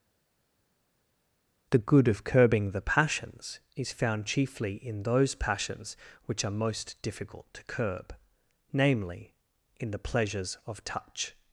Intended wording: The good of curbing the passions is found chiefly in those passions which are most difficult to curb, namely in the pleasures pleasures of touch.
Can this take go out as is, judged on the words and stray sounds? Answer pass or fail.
fail